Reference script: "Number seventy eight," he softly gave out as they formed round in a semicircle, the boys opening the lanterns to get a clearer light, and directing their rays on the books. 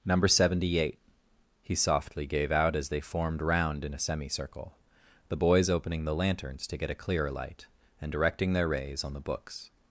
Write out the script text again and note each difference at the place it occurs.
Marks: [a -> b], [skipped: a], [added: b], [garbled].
"Number seventy eight," he softly gave out as they formed round in a semicircle, the boys opening the lanterns to get a clearer light, and directing their rays on the books.